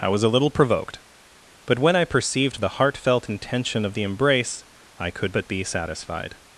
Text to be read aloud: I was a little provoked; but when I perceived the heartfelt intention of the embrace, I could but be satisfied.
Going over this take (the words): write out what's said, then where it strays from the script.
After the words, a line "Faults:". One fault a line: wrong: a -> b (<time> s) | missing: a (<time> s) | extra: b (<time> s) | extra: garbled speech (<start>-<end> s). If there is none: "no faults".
I was a little provoked; but when I perceived the heartfelt intention of the embrace, I could but be satisfied.
Faults:
no faults